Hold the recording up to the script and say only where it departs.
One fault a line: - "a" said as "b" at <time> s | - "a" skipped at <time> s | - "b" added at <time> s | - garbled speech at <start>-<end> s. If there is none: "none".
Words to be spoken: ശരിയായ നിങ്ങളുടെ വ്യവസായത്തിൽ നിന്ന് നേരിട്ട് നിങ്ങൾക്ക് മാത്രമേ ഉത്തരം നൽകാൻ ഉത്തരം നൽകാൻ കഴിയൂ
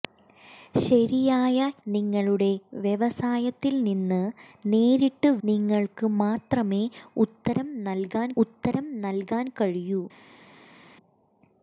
none